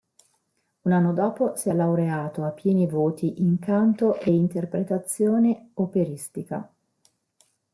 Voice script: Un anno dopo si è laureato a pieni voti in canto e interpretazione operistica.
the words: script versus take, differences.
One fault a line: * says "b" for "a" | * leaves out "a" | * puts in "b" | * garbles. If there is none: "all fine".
all fine